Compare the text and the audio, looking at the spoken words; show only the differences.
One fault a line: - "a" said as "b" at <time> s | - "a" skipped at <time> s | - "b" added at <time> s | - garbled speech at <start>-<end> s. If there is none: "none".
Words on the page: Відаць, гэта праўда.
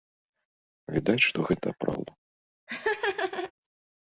- "што" added at 1.3 s